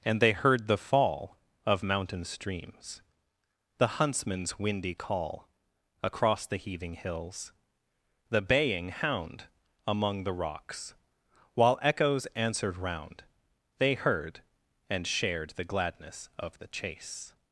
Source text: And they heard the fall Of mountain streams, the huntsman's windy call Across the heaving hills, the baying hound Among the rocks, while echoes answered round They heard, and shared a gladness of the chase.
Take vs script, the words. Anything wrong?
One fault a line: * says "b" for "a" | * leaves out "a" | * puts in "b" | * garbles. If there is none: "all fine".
* says "the" for "a"